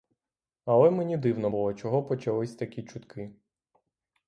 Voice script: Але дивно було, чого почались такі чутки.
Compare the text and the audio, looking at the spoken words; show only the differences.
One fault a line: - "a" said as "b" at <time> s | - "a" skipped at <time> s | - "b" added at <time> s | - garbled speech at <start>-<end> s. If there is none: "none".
- "мені" added at 0.9 s